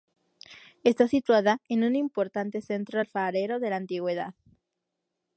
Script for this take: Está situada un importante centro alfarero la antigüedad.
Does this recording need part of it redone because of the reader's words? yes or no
yes